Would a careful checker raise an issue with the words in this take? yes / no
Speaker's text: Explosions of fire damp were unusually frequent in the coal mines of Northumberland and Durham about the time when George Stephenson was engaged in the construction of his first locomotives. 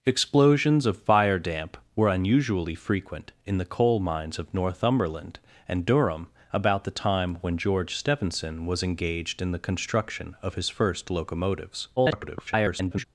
yes